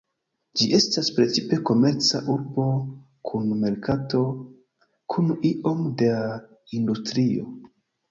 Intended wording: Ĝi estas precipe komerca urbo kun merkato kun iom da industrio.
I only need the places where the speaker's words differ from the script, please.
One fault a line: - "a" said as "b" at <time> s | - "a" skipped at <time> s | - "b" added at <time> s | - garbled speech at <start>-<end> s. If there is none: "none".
none